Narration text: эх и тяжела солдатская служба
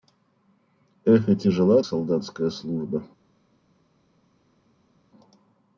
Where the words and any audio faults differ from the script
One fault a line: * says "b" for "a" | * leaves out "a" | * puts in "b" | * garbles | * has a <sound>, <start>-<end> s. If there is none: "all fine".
all fine